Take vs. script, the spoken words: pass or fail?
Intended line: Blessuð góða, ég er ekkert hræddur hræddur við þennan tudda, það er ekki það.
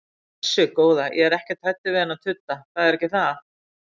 fail